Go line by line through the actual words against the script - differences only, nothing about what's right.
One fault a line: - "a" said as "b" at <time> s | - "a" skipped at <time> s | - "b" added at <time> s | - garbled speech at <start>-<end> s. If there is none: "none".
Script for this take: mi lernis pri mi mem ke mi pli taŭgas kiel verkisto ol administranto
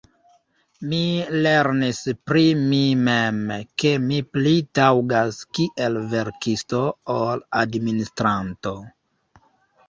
none